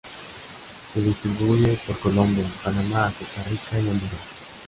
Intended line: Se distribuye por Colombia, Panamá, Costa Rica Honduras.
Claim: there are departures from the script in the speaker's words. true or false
true